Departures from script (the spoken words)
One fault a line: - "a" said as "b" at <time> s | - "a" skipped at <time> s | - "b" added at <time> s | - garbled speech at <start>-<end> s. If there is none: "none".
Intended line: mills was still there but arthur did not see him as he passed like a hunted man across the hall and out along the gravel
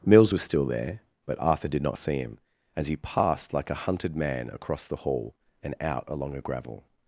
- "the" said as "a" at 6.3 s